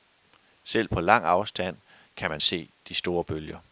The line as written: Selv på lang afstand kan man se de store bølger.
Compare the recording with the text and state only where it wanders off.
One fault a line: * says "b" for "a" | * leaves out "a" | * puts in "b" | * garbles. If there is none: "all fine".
all fine